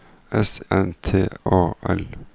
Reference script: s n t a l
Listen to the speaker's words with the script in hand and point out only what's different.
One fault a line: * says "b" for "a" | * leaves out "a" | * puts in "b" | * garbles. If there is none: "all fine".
all fine